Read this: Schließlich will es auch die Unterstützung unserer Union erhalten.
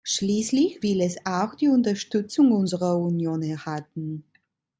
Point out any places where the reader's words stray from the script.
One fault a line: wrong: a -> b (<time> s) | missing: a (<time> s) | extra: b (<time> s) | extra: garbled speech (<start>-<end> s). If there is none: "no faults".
no faults